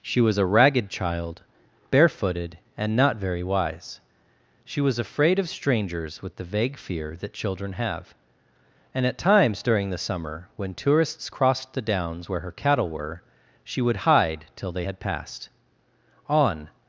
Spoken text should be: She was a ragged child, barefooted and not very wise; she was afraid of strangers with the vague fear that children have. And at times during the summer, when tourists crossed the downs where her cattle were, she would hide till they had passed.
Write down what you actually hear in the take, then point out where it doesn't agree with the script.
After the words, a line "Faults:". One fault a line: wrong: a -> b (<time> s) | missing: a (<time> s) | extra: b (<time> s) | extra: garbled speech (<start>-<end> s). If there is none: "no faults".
She was a ragged child, barefooted and not very wise; she was afraid of strangers with the vague fear that children have. And at times during the summer, when tourists crossed the downs where her cattle were, she would hide till they had passed. On
Faults:
extra: On (16.3 s)